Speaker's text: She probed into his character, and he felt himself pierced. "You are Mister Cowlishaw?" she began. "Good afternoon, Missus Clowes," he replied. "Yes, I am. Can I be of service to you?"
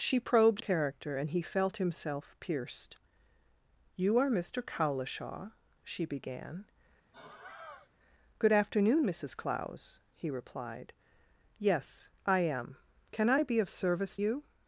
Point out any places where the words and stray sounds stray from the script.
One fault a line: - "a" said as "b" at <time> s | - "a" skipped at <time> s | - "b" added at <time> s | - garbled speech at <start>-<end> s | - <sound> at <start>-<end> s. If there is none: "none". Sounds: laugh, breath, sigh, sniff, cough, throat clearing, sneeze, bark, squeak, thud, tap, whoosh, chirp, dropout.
- "into his" skipped at 0.6 s
- sigh at 7.1-7.9 s
- "to" skipped at 14.2 s